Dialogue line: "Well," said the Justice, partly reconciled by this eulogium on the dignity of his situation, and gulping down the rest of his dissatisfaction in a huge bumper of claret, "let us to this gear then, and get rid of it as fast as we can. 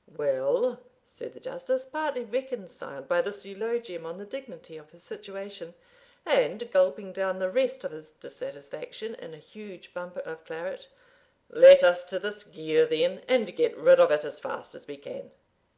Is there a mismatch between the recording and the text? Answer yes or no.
no